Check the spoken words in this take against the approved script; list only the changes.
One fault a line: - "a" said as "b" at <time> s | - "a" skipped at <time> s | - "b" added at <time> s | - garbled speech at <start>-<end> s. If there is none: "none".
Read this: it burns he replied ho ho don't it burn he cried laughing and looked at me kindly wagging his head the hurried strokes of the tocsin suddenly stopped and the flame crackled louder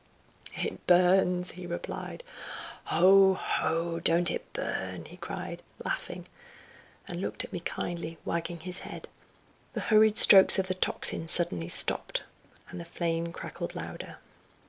none